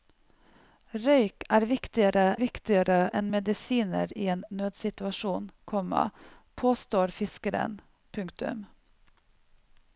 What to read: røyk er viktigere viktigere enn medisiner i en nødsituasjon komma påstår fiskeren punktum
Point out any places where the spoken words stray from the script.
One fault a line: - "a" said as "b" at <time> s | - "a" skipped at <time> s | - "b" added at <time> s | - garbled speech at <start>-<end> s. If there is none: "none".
none